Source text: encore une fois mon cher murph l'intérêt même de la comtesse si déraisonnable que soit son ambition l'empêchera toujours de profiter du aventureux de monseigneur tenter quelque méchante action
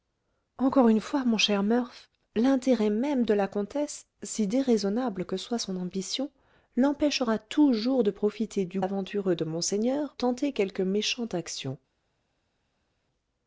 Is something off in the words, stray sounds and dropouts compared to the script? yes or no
no